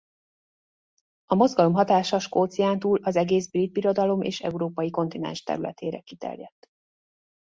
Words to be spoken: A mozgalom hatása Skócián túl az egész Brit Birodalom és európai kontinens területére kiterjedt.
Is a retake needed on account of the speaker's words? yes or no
no